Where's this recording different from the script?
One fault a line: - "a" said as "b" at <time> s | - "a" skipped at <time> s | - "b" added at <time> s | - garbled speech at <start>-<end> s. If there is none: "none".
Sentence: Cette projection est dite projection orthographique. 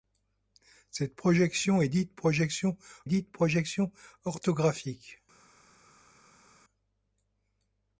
- "dite projection" added at 3.0 s